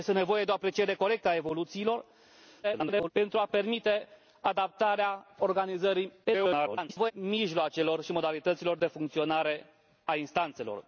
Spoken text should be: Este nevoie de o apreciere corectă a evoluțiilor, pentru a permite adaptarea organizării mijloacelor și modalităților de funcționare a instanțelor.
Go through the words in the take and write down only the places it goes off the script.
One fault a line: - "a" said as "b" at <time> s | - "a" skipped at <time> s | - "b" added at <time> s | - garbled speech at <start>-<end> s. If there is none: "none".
- garbled speech at 2.6-3.1 s
- garbled speech at 6.2-7.1 s